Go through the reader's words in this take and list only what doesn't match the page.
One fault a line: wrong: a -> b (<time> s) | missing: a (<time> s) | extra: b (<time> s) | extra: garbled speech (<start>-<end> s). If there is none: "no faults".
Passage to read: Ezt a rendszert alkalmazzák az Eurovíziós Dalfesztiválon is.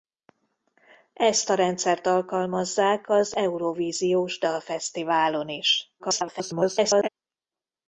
extra: garbled speech (6.0-7.1 s)